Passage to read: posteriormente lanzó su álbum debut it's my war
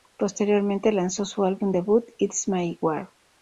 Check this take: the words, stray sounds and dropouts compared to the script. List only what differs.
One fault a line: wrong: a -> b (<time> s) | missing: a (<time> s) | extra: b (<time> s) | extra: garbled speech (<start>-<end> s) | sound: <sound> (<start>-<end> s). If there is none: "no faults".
no faults